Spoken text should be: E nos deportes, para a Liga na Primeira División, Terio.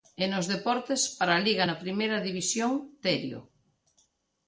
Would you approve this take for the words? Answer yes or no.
yes